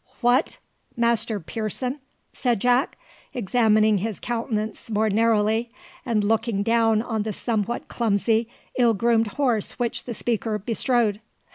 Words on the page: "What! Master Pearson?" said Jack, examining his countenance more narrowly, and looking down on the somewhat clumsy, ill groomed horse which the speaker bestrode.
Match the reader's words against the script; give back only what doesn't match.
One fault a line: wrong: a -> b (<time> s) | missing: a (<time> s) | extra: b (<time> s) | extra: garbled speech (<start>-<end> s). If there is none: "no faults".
no faults